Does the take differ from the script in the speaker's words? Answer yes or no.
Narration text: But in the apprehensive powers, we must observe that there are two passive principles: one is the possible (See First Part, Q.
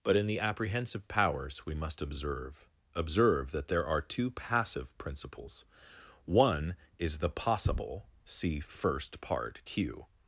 yes